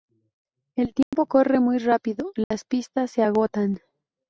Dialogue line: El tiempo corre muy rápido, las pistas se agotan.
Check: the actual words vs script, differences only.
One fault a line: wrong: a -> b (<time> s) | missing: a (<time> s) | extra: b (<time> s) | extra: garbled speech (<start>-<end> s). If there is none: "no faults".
no faults